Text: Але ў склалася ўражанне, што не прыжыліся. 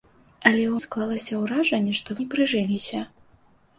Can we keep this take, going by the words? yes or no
yes